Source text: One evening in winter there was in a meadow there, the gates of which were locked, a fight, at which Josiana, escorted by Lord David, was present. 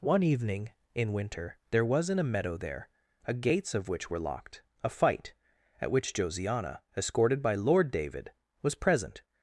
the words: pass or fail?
fail